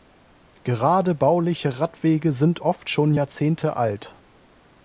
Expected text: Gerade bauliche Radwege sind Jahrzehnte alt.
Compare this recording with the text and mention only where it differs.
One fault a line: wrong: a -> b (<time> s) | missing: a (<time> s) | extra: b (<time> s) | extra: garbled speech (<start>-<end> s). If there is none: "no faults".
extra: oft schon (2.6 s)